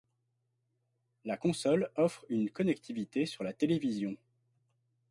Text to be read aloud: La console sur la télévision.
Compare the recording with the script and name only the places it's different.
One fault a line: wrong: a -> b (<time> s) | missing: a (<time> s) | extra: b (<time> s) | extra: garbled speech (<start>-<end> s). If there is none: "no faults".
extra: offre une connectivité (2.0 s)